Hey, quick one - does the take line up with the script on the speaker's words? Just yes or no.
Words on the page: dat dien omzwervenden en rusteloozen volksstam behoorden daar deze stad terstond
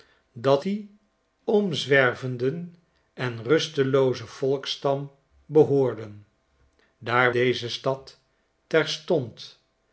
yes